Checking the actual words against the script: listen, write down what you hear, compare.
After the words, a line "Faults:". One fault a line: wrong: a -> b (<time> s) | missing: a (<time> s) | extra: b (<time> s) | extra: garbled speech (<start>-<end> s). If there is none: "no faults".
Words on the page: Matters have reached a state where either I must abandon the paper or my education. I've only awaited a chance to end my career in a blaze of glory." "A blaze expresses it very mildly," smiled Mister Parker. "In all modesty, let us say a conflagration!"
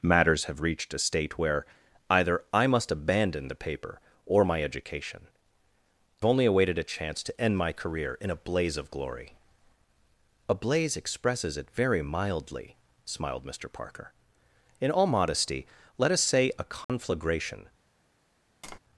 Matters have reached a state where either I must abandon the paper or my education. Only awaited a chance to end my career in a blaze of glory." "A blaze expresses it very mildly," smiled Mister Parker. "In all modesty, let us say a conflagration!"
Faults:
missing: I've (5.3 s)